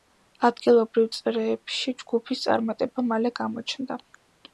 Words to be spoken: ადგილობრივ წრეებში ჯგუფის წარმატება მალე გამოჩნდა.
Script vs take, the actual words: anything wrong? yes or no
no